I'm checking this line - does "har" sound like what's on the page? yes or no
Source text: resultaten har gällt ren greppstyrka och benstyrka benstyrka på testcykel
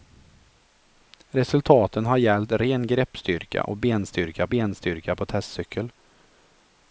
yes